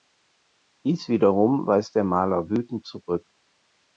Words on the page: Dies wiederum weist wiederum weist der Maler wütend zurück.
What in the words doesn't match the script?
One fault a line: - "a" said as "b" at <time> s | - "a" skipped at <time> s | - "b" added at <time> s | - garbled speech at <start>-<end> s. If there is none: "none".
- "wiederum weist" skipped at 1.9 s